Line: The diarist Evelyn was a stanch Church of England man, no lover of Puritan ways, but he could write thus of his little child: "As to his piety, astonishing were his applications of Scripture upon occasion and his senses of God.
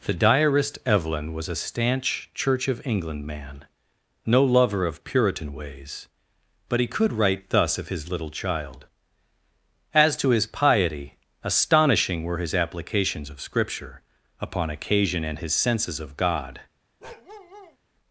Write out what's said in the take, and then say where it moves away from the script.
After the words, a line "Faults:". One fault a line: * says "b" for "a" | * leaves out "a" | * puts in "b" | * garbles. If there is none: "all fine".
The diarist Evelyn was a stanch Church of England man, no lover of Puritan ways, but he could write thus of his little child: "As to his piety, astonishing were his applications of Scripture upon occasion and his senses of God.
Faults:
all fine